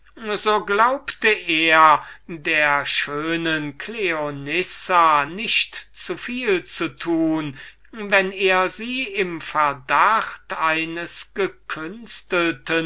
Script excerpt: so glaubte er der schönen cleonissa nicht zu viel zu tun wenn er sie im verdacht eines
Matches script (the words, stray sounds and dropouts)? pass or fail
pass